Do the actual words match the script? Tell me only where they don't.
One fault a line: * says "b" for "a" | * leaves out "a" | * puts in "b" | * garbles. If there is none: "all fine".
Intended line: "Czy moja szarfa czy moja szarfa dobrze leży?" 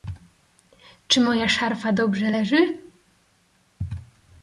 * leaves out "czy moja szarfa"